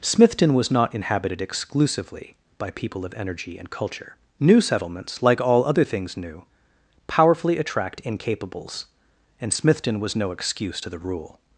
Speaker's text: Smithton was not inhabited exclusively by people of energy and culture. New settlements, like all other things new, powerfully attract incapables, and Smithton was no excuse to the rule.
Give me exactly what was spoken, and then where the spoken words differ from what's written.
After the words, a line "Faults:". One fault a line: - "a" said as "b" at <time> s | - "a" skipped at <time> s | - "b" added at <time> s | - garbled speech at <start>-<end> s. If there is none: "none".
Smithton was not inhabited exclusively by people of energy and culture. New settlements, like all other things new, powerfully attract incapables, and Smithton was no excuse to the rule.
Faults:
none